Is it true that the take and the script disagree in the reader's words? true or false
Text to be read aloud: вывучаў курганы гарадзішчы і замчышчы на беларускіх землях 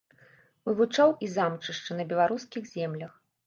true